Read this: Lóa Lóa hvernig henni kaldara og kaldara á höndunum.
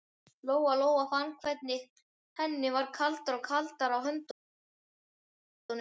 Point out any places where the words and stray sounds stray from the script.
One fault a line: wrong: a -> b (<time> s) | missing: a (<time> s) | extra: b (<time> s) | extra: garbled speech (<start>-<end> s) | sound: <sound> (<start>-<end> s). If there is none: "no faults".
extra: fann (1.1 s)
extra: varð (2.8 s)